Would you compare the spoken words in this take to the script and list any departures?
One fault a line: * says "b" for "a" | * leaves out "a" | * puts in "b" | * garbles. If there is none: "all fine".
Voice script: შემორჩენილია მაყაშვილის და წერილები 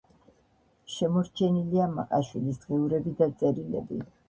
* puts in "დღიურები"